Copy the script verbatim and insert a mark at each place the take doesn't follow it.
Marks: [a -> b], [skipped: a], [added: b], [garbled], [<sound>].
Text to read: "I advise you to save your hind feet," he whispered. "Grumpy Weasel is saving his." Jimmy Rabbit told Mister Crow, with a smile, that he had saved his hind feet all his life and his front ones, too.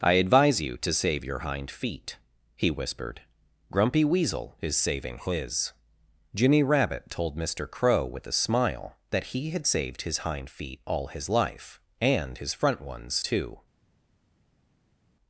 "I advise you to save your hind feet," he whispered. "Grumpy Weasel is saving his." Jimmy Rabbit told Mister Crow, with a smile, that he had saved his hind feet all his life and his front ones, too.